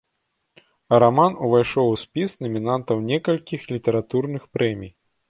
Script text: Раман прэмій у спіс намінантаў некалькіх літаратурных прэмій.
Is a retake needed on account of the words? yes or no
yes